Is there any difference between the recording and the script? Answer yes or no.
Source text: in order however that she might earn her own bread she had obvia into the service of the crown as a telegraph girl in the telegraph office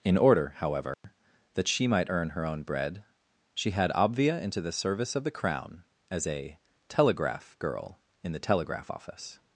no